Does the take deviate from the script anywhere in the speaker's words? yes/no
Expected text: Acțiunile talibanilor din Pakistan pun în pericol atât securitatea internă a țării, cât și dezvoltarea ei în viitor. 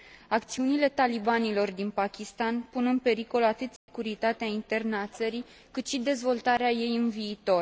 no